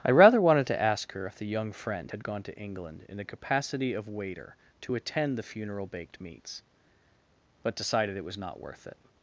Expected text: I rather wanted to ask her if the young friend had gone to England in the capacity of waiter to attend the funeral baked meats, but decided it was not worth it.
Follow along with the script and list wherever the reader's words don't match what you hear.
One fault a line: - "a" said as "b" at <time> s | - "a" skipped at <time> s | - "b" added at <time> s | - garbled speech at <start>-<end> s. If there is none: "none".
none